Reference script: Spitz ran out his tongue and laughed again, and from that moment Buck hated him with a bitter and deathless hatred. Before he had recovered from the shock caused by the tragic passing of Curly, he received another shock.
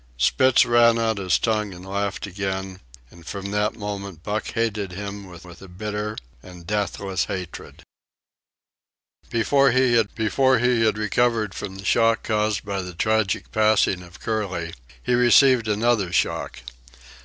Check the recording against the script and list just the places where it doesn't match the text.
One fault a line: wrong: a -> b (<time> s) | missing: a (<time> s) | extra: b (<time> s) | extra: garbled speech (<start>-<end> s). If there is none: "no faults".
extra: with (5.4 s)
extra: before he had (10.1 s)